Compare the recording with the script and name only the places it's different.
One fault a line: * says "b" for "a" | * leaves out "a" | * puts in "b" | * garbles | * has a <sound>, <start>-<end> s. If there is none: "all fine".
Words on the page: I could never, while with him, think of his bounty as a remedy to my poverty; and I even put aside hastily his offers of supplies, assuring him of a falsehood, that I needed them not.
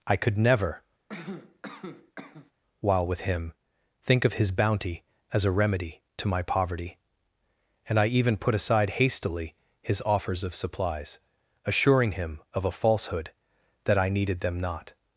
* has a cough, 1.1-2.5 s